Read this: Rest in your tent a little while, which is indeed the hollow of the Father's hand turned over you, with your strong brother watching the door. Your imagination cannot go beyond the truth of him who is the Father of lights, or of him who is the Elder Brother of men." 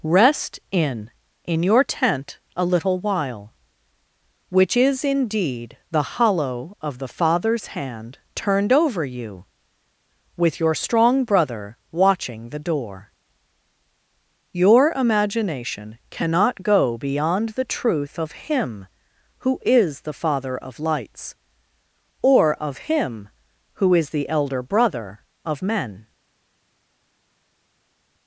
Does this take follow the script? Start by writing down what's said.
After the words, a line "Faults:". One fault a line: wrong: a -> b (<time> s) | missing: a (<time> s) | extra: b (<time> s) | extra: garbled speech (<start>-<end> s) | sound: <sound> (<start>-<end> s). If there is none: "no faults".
Rest in in your tent a little while, which is indeed the hollow of the Father's hand turned over you, with your strong brother watching the door. Your imagination cannot go beyond the truth of him who is the Father of lights, or of him who is the Elder Brother of men."
Faults:
extra: in (1.4 s)